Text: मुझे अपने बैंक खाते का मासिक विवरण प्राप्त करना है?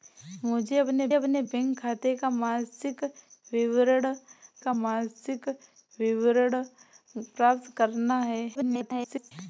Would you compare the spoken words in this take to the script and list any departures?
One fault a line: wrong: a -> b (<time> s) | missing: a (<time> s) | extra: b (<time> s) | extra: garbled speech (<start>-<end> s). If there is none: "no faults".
extra: अपने (1.1 s)
extra: का मासिक विवरण (4.6 s)
extra: garbled speech (8.5-9.3 s)